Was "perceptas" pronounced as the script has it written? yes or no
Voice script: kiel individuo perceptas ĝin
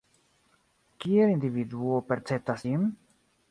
yes